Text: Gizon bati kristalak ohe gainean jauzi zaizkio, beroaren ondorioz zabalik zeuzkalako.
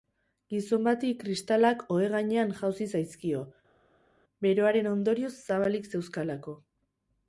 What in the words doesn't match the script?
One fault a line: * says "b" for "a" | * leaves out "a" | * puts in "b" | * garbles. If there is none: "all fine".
all fine